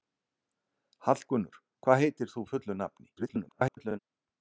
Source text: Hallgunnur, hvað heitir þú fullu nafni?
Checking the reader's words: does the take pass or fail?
fail